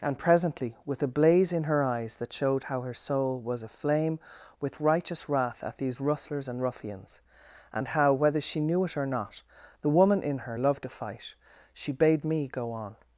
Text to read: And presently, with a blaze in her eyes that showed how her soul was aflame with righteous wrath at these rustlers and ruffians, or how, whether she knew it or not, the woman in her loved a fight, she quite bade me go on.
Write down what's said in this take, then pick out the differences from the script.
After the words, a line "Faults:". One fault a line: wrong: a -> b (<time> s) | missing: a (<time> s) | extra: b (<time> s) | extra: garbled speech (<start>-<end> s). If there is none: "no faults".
And presently, with a blaze in her eyes that showed how her soul was aflame with righteous wrath at these rustlers and ruffians, and how, whether she knew it or not, the woman in her loved a fight, she bade me go on.
Faults:
wrong: or -> and (7.7 s)
missing: quite (11.9 s)